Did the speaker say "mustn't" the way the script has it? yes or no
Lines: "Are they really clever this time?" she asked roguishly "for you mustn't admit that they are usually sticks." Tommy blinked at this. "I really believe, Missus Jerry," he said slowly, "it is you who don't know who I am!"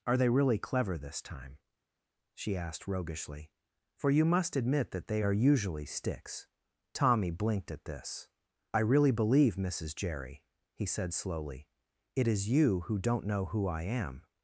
no